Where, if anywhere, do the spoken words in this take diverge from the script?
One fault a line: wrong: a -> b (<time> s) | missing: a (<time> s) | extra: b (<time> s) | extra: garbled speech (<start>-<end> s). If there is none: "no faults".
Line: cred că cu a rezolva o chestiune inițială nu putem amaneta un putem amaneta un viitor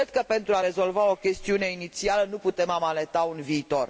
wrong: cu -> pentru (0.3 s)
missing: putem amaneta un (3.4 s)